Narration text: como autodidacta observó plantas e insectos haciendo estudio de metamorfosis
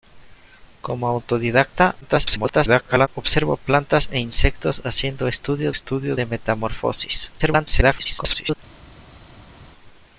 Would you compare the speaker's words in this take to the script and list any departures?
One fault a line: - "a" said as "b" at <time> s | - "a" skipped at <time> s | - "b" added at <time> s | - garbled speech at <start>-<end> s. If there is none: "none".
- garbled speech at 2.0-3.1 s
- "estudio" added at 5.7 s
- garbled speech at 7.4-8.6 s